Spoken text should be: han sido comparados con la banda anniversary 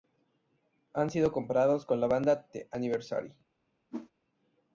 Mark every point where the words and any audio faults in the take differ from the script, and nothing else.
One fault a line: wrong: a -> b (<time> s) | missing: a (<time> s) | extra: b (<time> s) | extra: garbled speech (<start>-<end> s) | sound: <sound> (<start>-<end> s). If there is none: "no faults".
extra: the (2.5 s)
sound: whoosh (3.9-4.1 s)